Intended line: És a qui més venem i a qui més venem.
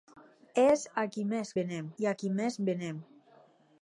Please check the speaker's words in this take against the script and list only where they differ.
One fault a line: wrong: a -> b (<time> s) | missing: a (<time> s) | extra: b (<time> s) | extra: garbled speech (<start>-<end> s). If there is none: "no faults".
no faults